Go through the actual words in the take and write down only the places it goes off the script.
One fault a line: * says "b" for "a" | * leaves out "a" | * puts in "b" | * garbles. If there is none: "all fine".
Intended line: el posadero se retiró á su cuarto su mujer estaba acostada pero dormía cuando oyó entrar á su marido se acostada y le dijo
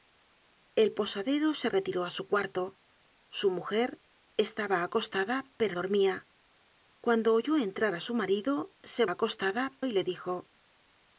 all fine